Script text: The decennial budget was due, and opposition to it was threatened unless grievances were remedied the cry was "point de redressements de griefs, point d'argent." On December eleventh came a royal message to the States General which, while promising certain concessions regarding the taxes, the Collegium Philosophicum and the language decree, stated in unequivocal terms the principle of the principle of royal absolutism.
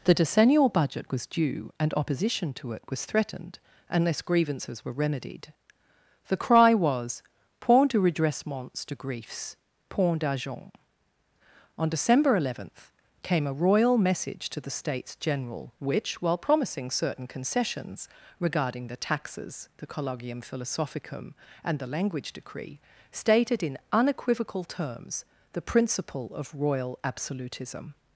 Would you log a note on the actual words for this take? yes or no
yes